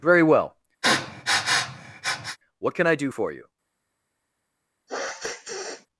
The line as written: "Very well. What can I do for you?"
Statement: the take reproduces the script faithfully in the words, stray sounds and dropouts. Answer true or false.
false